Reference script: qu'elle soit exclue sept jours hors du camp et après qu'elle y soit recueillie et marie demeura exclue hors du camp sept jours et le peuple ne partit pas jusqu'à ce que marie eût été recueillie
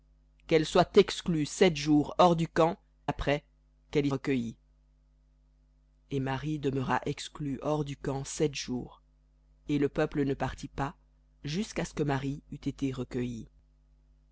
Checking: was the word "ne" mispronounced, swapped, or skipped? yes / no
no